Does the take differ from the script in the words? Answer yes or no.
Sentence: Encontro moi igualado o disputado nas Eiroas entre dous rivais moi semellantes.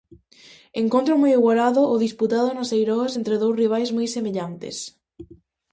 no